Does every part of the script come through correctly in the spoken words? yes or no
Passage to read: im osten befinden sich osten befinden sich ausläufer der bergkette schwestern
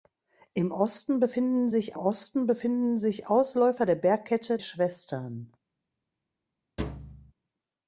yes